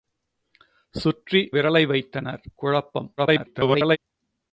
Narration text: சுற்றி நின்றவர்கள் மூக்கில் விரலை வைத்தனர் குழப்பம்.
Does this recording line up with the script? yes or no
no